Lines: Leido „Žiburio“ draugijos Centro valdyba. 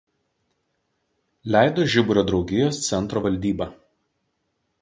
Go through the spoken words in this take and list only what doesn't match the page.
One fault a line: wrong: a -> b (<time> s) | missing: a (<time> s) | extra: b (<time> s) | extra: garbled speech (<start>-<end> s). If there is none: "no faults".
no faults